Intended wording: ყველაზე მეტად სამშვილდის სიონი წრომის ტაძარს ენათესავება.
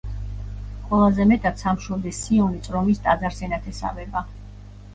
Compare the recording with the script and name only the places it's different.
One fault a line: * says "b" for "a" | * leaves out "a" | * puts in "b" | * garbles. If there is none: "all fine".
all fine